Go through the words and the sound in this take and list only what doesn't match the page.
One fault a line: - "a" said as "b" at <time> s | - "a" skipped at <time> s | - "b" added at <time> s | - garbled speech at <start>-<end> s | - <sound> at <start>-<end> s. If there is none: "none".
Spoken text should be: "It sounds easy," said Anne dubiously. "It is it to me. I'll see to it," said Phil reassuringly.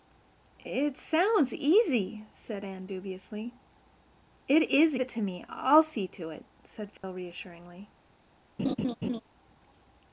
- dropout at 7.0-7.0 s
- laugh at 8.6-9.2 s